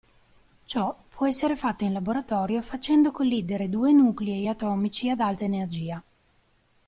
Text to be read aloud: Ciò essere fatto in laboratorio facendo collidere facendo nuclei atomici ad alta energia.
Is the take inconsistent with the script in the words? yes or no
yes